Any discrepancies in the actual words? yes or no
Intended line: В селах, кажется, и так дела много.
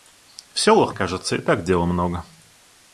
no